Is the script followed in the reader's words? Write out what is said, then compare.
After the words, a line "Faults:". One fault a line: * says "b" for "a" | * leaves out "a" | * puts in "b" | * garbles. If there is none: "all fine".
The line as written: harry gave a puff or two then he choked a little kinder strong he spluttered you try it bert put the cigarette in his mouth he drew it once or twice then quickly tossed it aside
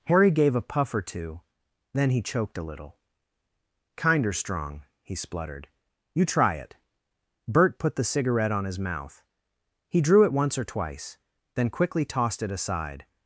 harry gave a puff or two then he choked a little kinder strong he spluttered you try it bert put the cigarette on his mouth he drew it once or twice then quickly tossed it aside
Faults:
* says "on" for "in"